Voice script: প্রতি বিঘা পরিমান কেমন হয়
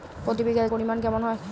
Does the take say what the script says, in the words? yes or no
yes